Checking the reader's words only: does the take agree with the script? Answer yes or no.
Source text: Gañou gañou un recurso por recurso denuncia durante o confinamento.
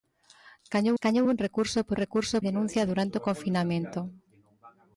yes